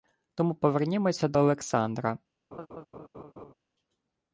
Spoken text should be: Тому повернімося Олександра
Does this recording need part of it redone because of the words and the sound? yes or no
yes